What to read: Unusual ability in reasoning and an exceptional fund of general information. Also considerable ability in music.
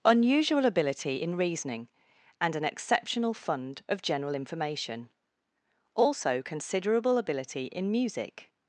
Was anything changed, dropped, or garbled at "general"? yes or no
no